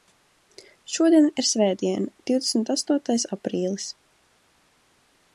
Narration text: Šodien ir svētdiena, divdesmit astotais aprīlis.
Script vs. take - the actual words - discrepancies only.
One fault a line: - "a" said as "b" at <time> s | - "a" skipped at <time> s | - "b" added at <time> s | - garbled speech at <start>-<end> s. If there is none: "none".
none